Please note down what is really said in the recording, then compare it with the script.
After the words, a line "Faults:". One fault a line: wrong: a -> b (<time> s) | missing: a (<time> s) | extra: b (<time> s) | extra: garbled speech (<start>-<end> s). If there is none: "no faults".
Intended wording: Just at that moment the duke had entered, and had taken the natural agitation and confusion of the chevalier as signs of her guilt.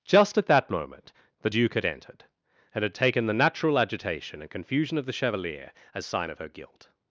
Just at that moment the duke had entered, and had taken the natural agitation and confusion of the chevalier as sign of her guilt.
Faults:
wrong: signs -> sign (6.0 s)